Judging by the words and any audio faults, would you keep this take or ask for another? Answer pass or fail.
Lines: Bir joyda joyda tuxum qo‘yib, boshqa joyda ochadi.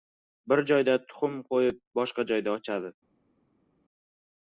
fail